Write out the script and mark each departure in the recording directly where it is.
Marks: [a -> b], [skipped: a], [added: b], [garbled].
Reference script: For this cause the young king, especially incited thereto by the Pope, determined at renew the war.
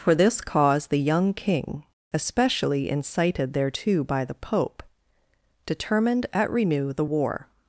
For this cause the young king, especially incited thereto by the Pope, determined at renew the war.